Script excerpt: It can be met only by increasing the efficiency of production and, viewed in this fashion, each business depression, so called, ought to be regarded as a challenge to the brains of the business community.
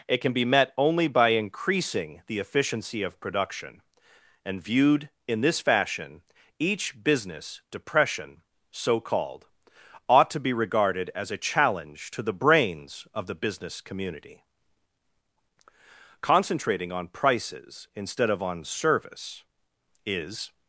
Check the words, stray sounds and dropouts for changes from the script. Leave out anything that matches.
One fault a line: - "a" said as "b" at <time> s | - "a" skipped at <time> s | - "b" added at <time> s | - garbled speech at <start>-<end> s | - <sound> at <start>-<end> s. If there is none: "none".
- "Concentrating on prices instead of on service is" added at 16.2 s